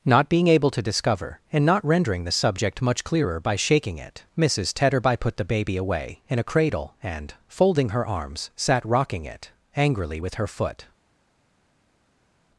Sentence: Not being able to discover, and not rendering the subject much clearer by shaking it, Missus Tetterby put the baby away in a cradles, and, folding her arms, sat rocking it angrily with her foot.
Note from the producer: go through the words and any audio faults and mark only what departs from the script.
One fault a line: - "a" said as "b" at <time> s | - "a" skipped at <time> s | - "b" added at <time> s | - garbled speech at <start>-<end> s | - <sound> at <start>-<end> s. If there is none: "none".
- "cradles" said as "cradle" at 6.4 s